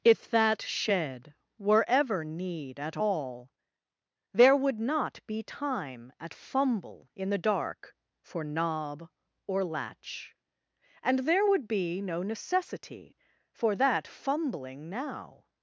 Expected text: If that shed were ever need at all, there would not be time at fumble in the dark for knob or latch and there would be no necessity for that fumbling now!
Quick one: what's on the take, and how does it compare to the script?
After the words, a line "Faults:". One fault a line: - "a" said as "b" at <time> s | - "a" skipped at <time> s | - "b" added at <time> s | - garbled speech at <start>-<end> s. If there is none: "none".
If that shed were ever need at all, there would not be time at fumble in the dark for knob or latch and there would be no necessity for that fumbling now!
Faults:
none